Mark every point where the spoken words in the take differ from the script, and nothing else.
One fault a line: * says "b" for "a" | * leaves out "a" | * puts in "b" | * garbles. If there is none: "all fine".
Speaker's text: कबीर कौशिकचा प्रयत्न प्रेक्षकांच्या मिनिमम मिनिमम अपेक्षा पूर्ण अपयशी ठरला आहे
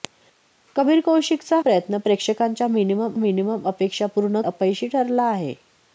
all fine